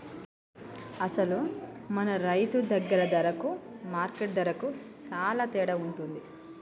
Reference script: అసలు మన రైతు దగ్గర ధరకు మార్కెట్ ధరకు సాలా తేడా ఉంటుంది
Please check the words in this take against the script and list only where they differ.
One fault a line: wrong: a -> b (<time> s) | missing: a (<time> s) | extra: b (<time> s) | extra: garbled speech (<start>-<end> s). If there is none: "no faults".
no faults